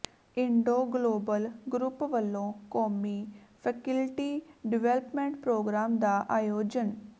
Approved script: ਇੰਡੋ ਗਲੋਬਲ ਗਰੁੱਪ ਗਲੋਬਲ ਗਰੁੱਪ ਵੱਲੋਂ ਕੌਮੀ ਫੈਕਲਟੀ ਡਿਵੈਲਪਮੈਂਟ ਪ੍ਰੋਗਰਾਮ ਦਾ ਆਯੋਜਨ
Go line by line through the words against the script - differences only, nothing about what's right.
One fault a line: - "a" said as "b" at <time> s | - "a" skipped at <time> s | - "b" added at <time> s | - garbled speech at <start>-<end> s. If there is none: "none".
- "ਗਲੋਬਲ ਗਰੁੱਪ" skipped at 2.0 s